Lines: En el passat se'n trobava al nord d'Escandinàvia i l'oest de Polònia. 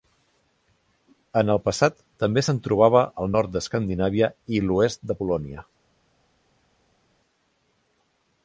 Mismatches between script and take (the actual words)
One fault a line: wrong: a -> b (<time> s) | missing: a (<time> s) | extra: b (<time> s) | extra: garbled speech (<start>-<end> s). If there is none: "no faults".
extra: també (2.2 s)